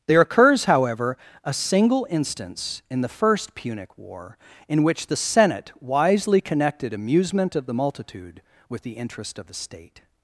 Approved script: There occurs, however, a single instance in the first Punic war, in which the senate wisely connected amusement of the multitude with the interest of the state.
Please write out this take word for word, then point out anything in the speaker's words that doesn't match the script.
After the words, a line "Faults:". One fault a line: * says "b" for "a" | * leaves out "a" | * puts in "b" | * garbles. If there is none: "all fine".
There occurs, however, a single instance in the first Punic war, in which the senate wisely connected amusement of the multitude with the interest of the state.
Faults:
all fine